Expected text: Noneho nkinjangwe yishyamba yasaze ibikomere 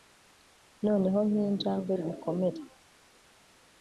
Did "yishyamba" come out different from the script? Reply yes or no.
yes